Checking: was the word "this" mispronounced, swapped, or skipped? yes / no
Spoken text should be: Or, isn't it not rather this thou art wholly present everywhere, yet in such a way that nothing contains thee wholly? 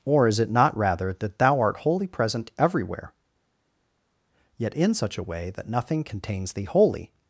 yes